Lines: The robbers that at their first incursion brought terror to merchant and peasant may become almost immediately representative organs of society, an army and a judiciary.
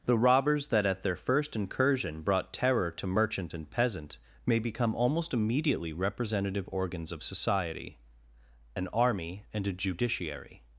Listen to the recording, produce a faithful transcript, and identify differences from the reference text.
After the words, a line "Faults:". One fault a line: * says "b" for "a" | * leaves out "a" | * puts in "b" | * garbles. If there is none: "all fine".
The robbers that at their first incursion brought terror to merchant and peasant may become almost immediately representative organs of society, an army and a judiciary.
Faults:
all fine